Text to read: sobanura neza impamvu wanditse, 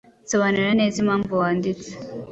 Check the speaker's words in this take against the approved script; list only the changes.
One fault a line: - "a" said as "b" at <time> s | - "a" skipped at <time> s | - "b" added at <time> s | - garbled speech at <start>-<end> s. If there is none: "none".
none